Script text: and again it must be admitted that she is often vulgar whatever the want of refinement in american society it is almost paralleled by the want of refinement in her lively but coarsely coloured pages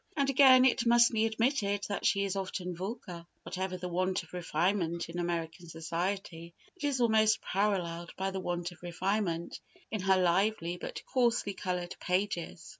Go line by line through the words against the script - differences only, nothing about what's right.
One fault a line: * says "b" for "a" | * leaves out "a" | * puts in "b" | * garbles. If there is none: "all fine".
all fine